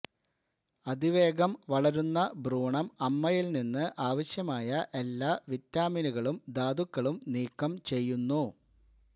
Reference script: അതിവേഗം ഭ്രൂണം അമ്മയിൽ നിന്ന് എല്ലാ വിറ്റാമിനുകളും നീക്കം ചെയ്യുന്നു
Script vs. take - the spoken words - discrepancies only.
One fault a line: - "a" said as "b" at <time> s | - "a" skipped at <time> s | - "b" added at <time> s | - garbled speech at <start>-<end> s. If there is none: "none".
- "വളരുന്ന" added at 1.7 s
- "ആവശ്യമായ" added at 4.1 s
- "ധാതുക്കളും" added at 6.6 s